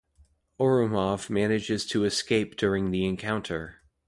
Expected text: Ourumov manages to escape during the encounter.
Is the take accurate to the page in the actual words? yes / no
yes